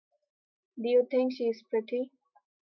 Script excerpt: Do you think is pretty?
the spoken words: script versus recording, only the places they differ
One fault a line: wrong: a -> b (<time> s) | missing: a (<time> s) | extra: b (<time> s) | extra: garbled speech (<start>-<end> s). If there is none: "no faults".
extra: she (1.3 s)